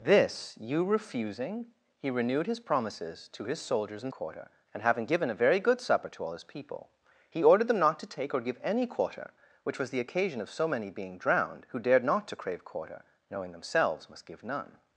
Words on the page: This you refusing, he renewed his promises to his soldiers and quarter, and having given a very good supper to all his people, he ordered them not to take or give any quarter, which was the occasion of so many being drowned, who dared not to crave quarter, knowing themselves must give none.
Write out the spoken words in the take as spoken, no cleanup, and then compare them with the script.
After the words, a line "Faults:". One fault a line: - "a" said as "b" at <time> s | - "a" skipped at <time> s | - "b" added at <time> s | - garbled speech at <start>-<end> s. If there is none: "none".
This you refusing, he renewed his promises to his soldiers and quarter, and having given a very good supper to all his people, he ordered them not to take or give any quarter, which was the occasion of so many being drowned, who dared not to crave quarter, knowing themselves must give none.
Faults:
none